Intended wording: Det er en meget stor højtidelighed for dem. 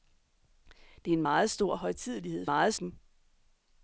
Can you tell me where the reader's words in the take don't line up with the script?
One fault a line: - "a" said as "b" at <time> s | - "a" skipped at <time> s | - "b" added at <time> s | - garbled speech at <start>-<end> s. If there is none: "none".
- "for" said as "meget" at 2.4 s